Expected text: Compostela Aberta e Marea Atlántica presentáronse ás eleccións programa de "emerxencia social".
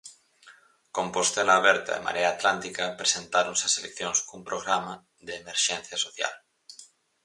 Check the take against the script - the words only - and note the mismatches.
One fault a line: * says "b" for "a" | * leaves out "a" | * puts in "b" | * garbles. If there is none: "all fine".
* puts in "cun"